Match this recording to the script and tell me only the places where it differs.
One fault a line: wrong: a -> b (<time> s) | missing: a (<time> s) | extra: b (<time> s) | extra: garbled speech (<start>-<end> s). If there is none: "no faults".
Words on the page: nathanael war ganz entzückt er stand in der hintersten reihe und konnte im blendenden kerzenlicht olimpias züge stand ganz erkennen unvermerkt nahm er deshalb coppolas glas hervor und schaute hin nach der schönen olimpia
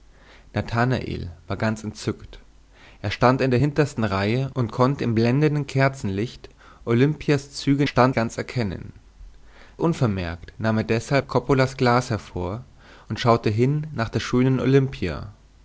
no faults